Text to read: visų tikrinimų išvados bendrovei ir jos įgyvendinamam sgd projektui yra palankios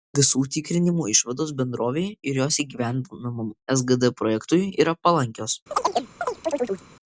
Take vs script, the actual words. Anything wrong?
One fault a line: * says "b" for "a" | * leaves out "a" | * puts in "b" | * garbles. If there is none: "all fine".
all fine